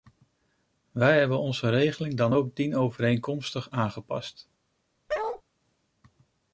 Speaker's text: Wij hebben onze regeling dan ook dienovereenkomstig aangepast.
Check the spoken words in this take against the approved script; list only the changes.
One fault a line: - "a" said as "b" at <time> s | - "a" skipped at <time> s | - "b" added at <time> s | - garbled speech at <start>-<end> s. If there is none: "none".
none